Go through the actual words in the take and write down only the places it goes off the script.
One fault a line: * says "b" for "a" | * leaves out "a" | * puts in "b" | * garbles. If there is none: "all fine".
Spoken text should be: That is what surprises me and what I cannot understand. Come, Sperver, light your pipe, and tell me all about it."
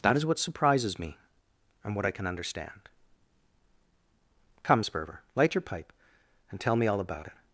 * says "can" for "cannot"